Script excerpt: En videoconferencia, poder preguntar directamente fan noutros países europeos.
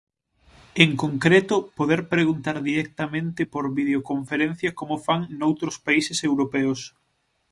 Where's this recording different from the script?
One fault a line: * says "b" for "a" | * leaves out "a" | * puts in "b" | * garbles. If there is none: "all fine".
* says "concreto" for "videoconferencia"
* puts in "por videoconferencia como"